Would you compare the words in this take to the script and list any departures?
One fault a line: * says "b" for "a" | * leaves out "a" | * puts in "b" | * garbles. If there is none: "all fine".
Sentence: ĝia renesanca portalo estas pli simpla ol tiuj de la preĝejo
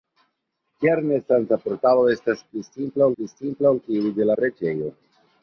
* puts in "pli simpla"
* leaves out "la"